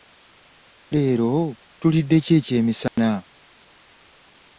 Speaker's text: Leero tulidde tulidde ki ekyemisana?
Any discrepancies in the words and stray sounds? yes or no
yes